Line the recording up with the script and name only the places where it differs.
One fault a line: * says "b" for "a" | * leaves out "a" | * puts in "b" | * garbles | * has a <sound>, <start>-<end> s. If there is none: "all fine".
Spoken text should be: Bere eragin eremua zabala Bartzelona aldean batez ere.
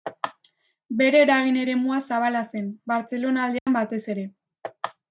* puts in "zen"
* has a dropout, 3.6-3.7 s